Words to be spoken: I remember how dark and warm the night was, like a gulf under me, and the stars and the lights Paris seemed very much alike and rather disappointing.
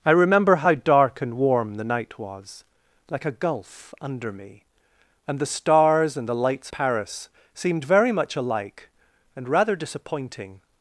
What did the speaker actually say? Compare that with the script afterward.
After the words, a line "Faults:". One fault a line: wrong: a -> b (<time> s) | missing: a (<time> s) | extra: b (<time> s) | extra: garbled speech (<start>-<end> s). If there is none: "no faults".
I remember how dark and warm the night was, like a gulf under me, and the stars and the lights Paris seemed very much alike and rather disappointing.
Faults:
no faults